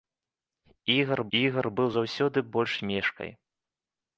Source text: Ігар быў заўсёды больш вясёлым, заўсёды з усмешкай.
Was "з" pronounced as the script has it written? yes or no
no